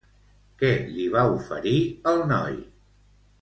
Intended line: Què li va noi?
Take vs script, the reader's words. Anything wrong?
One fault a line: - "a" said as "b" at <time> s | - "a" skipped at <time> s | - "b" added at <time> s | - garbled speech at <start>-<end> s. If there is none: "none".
- "oferir el" added at 1.3 s